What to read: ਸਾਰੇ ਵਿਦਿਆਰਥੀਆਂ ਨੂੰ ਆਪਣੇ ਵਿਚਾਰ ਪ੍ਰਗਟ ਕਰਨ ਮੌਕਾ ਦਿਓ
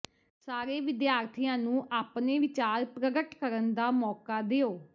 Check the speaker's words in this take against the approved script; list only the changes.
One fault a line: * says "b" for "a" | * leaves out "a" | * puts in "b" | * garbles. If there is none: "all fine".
* puts in "ਦਾ"